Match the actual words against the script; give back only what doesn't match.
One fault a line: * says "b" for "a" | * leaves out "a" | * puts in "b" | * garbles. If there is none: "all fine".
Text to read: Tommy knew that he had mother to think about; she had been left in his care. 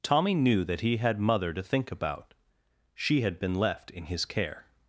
all fine